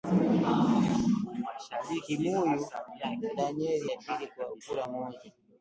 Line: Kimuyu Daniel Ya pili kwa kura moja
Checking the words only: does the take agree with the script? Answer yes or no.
yes